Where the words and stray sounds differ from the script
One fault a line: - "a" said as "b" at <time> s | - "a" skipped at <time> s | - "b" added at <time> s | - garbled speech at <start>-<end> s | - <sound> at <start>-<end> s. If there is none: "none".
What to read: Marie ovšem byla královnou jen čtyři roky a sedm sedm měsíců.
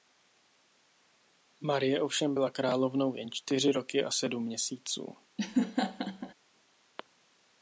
- "sedm" skipped at 4.4 s
- laugh at 5.4-6.3 s